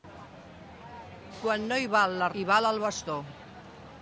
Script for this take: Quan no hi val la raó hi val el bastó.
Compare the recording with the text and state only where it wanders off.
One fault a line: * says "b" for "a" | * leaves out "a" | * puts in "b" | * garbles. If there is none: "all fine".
* leaves out "raó"